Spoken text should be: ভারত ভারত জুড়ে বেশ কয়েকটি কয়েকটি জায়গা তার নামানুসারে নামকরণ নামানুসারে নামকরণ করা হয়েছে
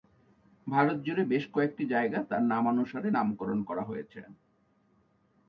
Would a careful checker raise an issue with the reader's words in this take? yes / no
yes